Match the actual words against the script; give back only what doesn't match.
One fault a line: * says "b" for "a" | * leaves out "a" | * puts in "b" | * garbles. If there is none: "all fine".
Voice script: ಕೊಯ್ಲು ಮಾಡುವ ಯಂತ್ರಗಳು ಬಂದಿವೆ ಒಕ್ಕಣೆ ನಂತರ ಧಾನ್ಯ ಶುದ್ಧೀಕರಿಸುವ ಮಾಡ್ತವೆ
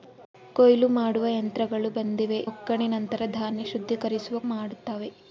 all fine